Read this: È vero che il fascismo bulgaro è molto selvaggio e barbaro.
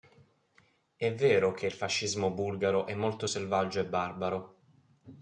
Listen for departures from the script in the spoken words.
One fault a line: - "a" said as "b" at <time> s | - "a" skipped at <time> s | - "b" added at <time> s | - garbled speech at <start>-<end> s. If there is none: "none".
none